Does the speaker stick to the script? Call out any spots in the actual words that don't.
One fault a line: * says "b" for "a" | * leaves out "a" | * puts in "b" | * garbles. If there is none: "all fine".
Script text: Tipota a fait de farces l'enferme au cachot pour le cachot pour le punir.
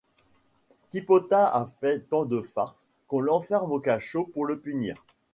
* puts in "tant"
* puts in "qu'on"
* leaves out "cachot pour le"